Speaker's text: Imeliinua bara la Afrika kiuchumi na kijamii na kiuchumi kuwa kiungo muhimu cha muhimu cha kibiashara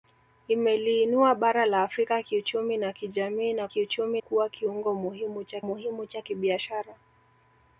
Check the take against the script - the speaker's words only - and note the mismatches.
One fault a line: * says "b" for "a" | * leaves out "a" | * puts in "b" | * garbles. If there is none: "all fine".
all fine